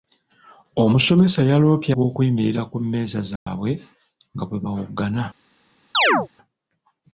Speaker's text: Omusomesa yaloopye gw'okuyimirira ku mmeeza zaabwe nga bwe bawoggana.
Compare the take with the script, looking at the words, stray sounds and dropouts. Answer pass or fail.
fail